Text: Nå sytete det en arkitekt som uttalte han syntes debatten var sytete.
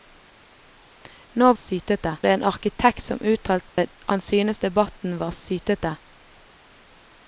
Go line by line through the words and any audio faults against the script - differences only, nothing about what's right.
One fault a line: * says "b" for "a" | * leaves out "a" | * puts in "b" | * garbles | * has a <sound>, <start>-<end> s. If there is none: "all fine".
* has a dropout, 3.7-3.8 s